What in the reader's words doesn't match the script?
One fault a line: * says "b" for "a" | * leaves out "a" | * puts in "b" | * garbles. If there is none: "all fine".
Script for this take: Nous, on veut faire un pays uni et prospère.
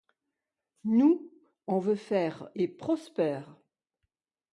* leaves out "un pays uni"